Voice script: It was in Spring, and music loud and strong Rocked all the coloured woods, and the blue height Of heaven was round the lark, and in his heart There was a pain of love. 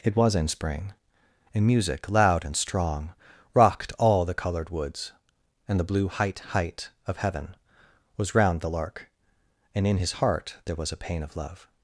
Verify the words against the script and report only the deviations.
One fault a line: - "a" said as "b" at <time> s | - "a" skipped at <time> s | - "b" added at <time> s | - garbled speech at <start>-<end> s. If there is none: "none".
- "height" added at 6.4 s